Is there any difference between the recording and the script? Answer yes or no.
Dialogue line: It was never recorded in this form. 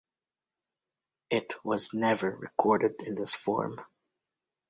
no